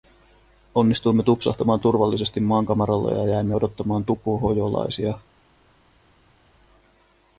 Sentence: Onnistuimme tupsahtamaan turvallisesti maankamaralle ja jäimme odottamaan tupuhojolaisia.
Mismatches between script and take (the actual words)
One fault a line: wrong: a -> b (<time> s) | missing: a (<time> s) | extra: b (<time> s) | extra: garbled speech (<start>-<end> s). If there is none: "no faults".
no faults